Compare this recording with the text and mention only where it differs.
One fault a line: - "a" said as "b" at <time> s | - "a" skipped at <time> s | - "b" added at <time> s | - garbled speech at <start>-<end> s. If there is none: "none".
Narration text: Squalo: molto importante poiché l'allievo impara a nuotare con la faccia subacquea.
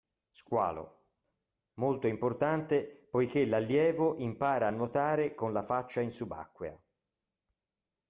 - "in" added at 6.0 s